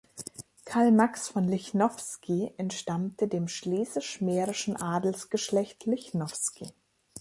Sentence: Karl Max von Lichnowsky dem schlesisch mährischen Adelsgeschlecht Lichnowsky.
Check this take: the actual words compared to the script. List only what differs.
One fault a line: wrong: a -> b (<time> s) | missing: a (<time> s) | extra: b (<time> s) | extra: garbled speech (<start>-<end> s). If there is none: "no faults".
extra: entstammte (2.6 s)